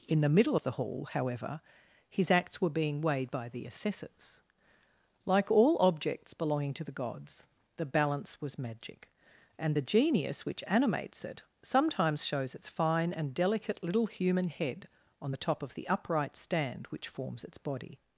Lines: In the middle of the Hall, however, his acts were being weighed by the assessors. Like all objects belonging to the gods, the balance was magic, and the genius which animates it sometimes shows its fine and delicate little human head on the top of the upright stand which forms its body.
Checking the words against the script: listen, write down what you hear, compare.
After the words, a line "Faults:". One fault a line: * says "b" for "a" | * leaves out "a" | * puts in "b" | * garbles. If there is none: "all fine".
In the middle of the Hall, however, his acts were being weighed by the assessors. Like all objects belonging to the gods, the balance was magic, and the genius which animates it sometimes shows its fine and delicate little human head on the top of the upright stand which forms its body.
Faults:
all fine